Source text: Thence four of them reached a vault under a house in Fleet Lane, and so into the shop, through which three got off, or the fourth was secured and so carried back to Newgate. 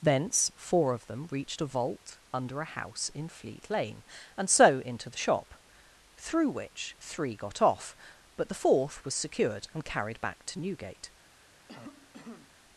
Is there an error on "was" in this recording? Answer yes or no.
no